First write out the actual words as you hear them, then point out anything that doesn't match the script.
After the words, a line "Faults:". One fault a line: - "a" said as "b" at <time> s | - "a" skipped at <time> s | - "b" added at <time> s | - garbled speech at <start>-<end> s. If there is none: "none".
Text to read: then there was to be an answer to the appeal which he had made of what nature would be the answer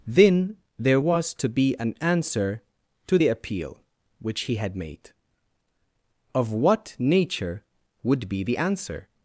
then there was to be an answer to the appeal which he had made of what nature would be the answer
Faults:
none